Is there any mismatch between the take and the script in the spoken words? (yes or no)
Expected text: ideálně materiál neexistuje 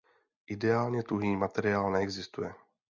yes